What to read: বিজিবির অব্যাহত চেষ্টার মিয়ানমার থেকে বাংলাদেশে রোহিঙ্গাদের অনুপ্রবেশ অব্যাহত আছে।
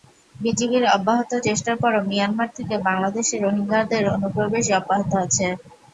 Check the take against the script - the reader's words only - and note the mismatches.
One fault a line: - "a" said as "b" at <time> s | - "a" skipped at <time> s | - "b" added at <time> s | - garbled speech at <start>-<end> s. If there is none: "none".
- "পরও" added at 1.8 s